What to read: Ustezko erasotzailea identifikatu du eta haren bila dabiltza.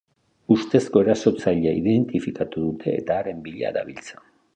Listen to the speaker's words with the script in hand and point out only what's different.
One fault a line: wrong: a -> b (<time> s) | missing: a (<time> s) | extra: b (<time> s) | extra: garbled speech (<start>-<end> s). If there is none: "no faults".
wrong: du -> dute (2.6 s)